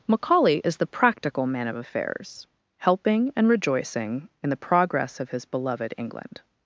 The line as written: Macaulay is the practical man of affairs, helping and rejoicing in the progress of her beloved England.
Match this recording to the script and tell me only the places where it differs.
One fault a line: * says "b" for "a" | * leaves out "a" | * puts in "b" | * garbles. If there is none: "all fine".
* says "his" for "her"